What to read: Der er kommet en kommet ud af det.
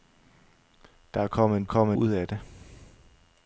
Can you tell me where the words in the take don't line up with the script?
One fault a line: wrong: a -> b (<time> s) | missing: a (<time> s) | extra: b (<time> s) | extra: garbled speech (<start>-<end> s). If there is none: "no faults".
no faults